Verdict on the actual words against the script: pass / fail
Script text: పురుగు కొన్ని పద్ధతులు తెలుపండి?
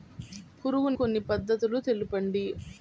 pass